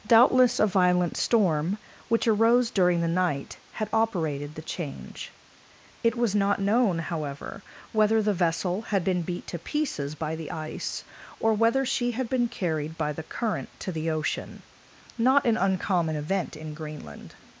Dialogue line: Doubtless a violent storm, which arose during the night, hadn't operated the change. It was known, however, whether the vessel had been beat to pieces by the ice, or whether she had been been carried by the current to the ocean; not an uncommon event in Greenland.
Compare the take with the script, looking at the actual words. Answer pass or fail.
fail